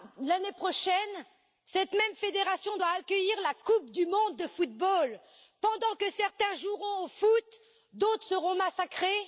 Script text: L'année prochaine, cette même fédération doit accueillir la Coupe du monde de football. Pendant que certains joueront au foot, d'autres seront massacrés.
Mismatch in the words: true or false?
false